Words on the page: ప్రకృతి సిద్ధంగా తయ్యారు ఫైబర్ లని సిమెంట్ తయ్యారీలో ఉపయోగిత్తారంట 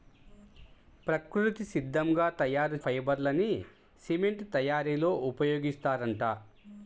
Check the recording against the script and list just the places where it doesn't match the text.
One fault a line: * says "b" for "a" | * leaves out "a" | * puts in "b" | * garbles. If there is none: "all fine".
all fine